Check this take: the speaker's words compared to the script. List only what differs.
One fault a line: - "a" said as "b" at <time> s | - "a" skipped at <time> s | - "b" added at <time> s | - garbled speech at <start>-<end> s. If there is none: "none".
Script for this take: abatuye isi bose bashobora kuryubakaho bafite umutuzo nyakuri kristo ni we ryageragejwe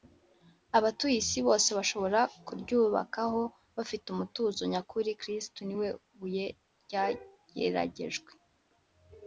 - "buye" added at 6.2 s